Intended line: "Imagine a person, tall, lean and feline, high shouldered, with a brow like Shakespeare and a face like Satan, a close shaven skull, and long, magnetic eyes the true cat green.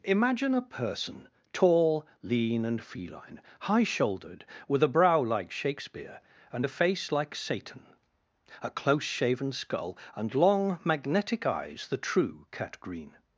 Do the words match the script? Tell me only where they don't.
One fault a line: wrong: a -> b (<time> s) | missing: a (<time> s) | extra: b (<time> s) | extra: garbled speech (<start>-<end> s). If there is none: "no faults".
no faults